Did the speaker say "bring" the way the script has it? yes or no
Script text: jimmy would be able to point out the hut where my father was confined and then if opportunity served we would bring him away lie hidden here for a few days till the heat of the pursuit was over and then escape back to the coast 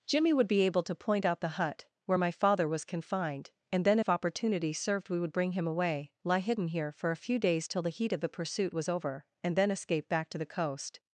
yes